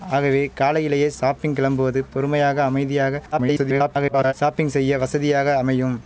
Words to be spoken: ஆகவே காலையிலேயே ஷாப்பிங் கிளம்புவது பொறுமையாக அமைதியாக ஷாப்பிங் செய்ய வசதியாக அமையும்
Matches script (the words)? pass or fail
fail